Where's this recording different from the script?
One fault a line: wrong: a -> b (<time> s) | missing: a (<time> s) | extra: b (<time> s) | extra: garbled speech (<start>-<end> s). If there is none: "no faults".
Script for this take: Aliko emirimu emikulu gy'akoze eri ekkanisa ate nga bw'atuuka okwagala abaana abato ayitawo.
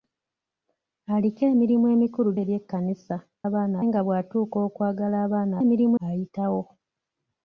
missing: gy'akoze (2.3 s)
wrong: ate -> abaana (3.5 s)
wrong: abato -> emirimu (5.6 s)